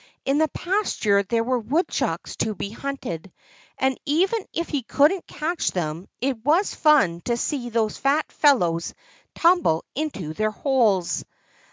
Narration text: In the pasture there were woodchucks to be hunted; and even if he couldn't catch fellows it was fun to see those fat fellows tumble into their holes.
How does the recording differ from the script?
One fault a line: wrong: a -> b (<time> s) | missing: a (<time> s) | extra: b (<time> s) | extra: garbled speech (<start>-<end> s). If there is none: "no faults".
wrong: fellows -> them (5.7 s)